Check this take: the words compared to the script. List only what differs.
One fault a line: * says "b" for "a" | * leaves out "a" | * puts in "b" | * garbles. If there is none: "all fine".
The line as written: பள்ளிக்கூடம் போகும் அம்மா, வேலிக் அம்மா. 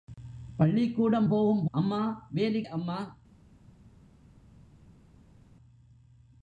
all fine